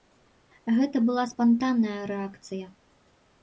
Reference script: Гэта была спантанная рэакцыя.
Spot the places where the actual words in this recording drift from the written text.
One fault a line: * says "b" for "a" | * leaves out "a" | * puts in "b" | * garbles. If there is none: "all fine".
all fine